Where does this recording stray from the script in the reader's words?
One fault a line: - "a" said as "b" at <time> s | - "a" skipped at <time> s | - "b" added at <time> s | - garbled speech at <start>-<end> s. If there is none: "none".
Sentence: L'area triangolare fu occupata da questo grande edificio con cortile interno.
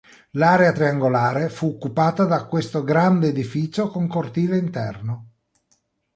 none